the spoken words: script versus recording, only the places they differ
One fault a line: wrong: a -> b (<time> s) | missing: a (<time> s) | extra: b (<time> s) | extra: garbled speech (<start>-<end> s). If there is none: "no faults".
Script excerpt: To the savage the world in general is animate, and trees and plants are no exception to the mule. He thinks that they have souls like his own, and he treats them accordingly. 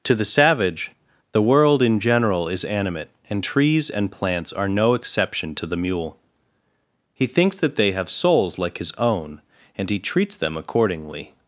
no faults